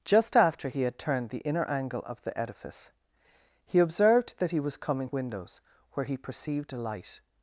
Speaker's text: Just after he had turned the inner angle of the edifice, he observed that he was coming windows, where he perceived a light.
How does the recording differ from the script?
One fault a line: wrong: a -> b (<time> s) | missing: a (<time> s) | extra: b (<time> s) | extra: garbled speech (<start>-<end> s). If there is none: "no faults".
no faults